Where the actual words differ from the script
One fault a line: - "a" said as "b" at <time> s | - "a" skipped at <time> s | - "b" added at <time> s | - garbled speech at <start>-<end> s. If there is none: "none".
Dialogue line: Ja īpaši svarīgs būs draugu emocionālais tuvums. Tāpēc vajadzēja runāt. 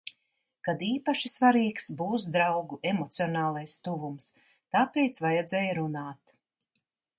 - "Ja" said as "Kad" at 0.7 s